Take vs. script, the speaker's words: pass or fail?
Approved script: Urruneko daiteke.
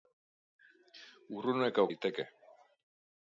pass